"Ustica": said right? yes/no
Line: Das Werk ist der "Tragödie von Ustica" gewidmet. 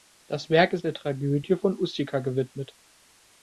yes